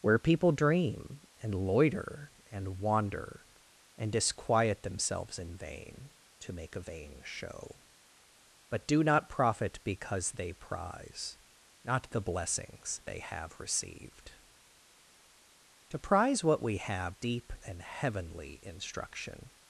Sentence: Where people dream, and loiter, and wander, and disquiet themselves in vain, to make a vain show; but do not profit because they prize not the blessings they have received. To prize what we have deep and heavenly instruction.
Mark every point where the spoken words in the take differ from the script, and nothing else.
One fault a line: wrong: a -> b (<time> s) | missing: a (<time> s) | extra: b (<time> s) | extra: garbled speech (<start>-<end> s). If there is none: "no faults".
no faults